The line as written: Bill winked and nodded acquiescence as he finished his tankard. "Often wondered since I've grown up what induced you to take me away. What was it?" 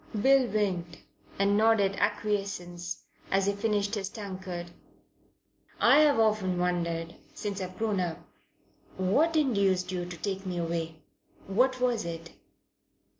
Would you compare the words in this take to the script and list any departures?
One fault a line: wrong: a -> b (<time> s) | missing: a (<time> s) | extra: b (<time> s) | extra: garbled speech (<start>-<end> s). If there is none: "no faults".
extra: I've (5.8 s)